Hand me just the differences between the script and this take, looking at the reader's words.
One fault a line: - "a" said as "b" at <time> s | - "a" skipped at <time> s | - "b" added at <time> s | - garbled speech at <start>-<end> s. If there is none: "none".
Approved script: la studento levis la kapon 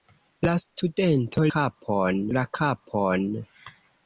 - "levis" said as "kapon" at 1.5 s